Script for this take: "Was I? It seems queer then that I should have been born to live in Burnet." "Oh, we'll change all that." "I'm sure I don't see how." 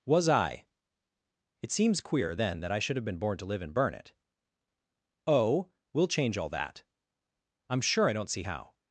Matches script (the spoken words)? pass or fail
pass